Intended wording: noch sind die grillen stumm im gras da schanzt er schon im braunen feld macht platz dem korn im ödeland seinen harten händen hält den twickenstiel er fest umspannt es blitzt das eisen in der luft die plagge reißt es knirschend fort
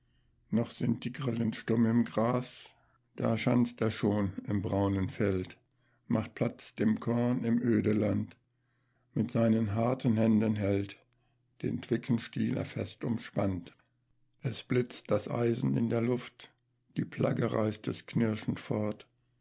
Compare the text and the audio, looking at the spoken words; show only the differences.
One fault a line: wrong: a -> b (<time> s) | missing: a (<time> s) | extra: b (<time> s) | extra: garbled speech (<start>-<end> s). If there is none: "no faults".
extra: mit (9.1 s)